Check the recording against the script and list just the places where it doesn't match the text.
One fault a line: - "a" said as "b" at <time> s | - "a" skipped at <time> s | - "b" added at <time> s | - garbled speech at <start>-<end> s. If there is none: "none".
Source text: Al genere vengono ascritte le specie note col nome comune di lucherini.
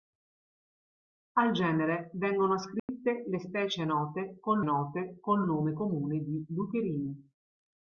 - "note col" added at 4.6 s